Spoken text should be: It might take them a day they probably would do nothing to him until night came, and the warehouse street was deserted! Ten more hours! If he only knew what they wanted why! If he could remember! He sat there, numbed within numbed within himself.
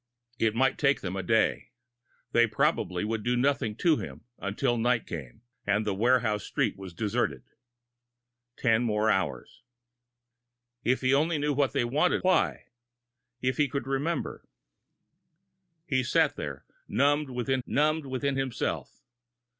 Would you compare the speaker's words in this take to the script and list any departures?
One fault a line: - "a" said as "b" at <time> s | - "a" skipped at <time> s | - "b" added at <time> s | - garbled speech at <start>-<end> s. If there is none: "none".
none